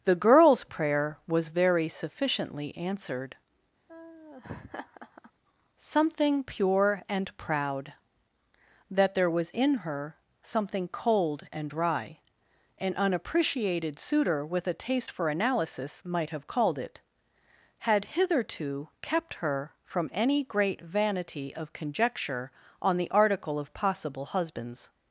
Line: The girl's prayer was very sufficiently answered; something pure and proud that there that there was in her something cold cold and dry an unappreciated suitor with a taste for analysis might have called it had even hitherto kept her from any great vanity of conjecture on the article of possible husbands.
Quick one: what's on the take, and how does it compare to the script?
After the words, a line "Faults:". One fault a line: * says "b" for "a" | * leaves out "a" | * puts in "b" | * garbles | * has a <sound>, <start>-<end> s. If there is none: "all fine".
The girl's prayer was very sufficiently answered; something pure and proud that there was in her something cold and dry an unappreciated suitor with a taste for analysis might have called it had hitherto kept her from any great vanity of conjecture on the article of possible husbands.
Faults:
* has a laugh, 3.9-5.3 s
* leaves out "that there"
* leaves out "cold"
* leaves out "even"